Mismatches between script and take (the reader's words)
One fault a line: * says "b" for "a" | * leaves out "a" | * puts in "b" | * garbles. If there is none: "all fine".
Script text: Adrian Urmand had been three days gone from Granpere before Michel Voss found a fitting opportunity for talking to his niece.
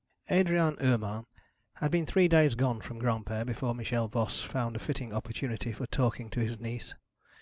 all fine